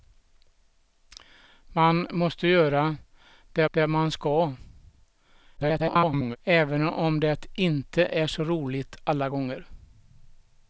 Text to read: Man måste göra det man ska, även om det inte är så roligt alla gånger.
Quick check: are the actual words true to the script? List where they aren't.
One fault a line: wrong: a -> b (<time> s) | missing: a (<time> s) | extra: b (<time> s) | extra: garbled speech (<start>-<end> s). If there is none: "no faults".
extra: det (3.7 s)
extra: garbled speech (5.6-6.4 s)